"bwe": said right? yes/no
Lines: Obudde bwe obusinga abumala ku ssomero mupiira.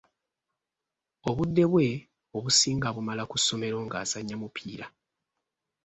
yes